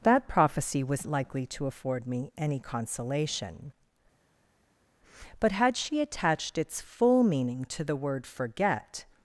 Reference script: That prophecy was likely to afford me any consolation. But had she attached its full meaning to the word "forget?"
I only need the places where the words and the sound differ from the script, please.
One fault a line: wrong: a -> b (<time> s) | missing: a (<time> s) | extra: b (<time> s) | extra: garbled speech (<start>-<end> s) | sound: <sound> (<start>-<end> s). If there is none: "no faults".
no faults